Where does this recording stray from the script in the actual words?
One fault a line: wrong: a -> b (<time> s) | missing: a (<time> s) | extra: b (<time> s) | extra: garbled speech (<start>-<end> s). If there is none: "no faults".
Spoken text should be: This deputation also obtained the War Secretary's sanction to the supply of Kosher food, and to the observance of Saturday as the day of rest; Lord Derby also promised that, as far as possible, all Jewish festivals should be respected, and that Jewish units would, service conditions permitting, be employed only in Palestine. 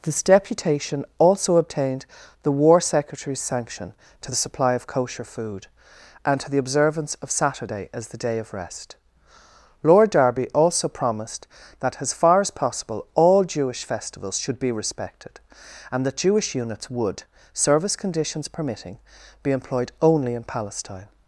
no faults